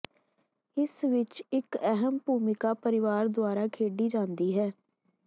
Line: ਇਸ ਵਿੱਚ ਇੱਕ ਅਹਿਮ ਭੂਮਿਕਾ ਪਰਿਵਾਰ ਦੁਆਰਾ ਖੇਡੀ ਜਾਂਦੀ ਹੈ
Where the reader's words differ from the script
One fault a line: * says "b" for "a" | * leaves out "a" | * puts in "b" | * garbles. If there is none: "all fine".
all fine